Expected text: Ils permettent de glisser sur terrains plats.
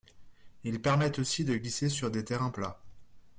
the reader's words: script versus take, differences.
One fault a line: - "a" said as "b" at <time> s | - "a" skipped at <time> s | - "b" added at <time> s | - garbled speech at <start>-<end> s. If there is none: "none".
- "aussi" added at 1.2 s
- "des" added at 2.1 s